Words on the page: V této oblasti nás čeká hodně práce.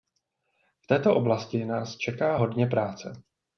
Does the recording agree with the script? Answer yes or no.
yes